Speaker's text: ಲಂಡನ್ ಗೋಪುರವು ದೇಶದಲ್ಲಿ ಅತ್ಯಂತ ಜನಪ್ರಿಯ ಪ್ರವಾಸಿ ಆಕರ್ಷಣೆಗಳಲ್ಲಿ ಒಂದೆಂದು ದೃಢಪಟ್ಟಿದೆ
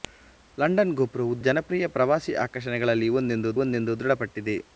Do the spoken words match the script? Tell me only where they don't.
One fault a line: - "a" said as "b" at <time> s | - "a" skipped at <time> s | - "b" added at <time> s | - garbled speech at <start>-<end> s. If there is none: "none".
- "ದೇಶದಲ್ಲಿ ಅತ್ಯಂತ" skipped at 1.3 s
- "ಒಂದೆಂದು" added at 3.6 s